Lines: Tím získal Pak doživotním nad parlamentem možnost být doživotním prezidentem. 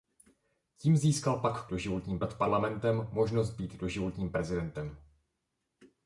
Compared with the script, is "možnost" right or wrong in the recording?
right